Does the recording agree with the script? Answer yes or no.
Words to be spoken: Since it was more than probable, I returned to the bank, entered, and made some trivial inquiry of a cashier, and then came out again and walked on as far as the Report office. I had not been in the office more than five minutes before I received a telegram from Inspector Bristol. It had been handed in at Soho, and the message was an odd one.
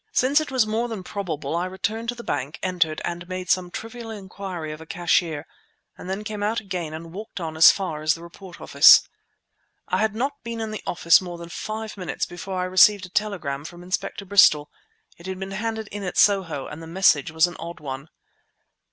yes